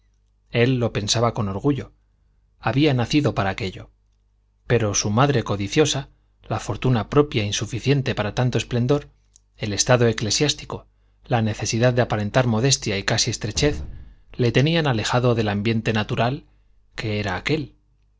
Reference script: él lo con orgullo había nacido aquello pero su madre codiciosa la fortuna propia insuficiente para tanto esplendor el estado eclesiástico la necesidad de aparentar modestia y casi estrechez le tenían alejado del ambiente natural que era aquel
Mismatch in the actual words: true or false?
true